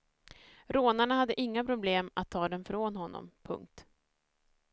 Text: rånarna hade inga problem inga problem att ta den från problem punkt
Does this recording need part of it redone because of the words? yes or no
yes